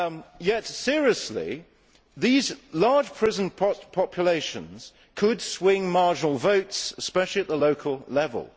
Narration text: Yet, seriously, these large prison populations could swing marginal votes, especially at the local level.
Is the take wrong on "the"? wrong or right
right